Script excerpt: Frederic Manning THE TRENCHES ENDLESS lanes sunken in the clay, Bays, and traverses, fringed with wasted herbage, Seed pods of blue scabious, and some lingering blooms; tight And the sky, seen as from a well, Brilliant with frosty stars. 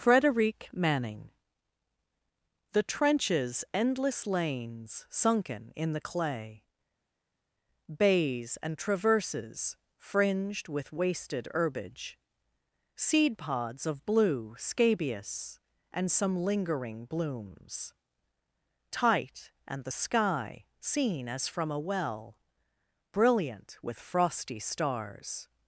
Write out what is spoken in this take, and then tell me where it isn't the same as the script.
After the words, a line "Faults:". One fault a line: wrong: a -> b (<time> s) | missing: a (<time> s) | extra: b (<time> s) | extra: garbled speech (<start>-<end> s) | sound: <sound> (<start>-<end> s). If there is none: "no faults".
Frederic Manning THE TRENCHES ENDLESS lanes sunken in the clay, Bays, and traverses, fringed with wasted herbage, Seed pods of blue scabious, and some lingering blooms; tight And the sky, seen as from a well, Brilliant with frosty stars.
Faults:
no faults